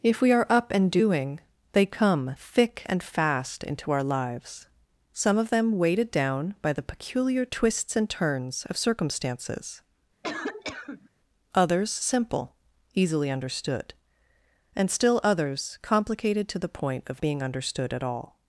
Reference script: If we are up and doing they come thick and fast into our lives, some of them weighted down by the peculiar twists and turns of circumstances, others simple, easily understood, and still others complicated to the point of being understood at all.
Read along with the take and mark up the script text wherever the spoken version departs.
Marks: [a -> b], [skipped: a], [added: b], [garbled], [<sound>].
If we are up and doing they come thick and fast into our lives, some of them weighted down by the peculiar twists and turns of circumstances, [cough] others simple, easily understood, and still others complicated to the point of being understood at all.